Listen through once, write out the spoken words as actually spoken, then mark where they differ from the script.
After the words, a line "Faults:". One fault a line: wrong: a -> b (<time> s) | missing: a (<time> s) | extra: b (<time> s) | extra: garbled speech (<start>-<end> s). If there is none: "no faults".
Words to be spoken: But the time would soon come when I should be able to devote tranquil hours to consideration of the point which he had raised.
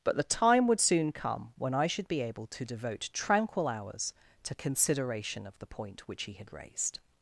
But the time would soon come when I should be able to devote tranquil hours to consideration of the point which he had raised.
Faults:
no faults